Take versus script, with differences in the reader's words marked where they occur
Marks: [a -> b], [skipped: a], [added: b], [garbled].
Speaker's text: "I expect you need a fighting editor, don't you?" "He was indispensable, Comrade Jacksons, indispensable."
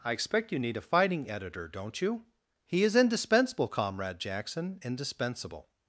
"I expect you need a fighting editor, don't you?" "He [was -> is] indispensable, Comrade [Jacksons, -> Jackson] indispensable."